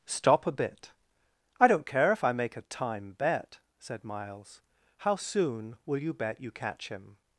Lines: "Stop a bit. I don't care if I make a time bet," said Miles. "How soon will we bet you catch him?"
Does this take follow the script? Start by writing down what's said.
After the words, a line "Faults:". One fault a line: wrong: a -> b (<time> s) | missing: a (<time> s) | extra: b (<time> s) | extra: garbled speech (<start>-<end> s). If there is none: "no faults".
"Stop a bit. I don't care if I make a time bet," said Miles. "How soon will you bet you catch him?"
Faults:
wrong: we -> you (6.0 s)